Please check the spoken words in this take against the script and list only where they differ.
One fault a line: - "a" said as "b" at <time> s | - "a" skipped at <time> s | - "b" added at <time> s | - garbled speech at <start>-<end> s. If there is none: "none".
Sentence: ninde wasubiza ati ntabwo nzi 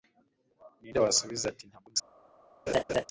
none